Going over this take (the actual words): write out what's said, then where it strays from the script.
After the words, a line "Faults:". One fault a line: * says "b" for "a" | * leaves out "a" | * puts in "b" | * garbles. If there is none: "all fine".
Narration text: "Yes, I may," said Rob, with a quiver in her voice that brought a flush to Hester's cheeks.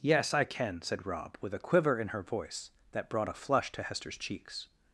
"Yes, I can," said Rob, with a quiver in her voice that brought a flush to Hester's cheeks.
Faults:
* says "can" for "may"